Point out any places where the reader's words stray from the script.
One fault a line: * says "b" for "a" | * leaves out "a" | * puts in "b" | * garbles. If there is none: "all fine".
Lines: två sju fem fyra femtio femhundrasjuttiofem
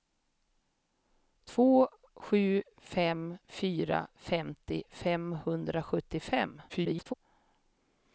* garbles